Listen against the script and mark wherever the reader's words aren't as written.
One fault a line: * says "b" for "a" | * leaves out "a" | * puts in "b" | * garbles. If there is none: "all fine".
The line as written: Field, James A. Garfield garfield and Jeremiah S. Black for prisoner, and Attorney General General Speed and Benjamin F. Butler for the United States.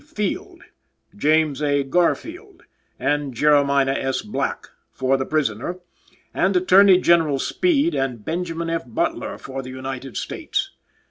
* leaves out "garfield"
* puts in "the"
* leaves out "General"